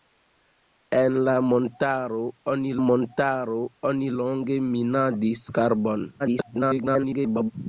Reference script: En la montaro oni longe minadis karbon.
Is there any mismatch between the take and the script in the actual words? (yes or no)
yes